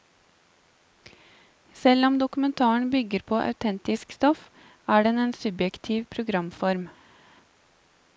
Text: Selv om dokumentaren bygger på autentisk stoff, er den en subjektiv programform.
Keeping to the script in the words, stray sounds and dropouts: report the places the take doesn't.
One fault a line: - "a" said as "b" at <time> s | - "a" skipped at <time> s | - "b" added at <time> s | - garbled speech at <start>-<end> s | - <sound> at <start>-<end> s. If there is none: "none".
none